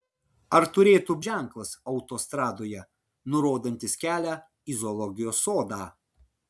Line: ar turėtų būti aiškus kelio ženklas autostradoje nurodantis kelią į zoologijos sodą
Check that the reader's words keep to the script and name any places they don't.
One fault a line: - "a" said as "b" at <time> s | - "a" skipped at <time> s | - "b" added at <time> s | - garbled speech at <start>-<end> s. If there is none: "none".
- "būti aiškus kelio" skipped at 1.1 s